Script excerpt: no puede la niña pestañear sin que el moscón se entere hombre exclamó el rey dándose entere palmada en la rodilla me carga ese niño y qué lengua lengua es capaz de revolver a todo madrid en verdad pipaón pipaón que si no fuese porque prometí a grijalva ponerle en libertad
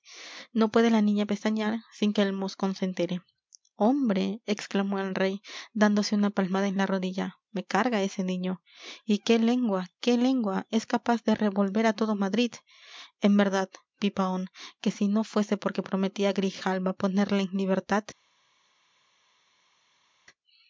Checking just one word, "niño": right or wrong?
right